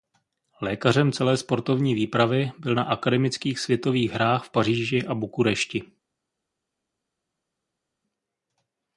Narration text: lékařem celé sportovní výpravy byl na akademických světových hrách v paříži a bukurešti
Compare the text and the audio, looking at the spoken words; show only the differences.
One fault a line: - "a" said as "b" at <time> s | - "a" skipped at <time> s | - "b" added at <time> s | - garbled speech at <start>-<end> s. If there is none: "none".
none